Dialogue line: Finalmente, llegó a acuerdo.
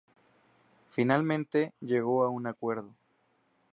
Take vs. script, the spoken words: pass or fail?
fail